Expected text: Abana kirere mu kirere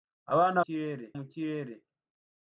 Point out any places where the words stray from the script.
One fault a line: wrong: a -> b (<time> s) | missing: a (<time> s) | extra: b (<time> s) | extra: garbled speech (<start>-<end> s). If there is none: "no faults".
no faults